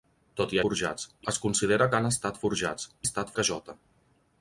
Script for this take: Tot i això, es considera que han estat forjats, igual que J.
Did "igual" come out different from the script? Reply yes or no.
yes